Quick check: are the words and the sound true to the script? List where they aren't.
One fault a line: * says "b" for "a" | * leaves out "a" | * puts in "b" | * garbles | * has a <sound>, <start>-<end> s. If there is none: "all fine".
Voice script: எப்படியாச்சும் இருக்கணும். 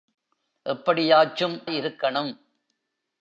all fine